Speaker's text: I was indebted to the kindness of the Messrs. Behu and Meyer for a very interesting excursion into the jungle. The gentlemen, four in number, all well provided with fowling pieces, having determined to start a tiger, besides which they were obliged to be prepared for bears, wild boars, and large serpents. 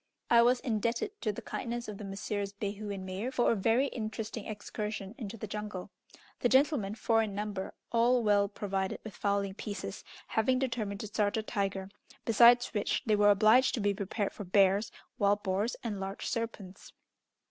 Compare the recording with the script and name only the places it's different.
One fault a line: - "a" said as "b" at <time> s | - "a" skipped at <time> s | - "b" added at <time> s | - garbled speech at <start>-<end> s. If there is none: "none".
none